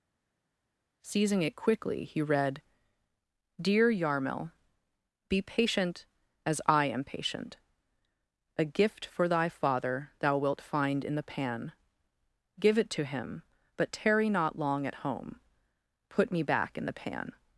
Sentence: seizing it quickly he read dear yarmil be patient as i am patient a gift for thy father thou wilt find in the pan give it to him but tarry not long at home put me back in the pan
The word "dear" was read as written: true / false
true